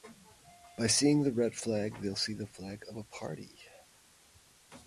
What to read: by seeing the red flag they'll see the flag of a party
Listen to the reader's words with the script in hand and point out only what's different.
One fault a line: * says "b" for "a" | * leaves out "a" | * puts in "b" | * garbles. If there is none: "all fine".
all fine